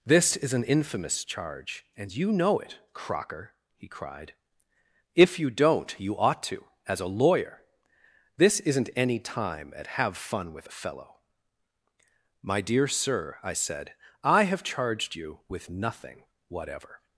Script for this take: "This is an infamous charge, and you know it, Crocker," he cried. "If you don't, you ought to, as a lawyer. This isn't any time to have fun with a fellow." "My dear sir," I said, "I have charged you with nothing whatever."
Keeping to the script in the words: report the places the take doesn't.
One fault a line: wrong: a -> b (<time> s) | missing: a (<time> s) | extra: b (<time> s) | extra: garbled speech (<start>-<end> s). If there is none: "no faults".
wrong: to -> at (9.8 s)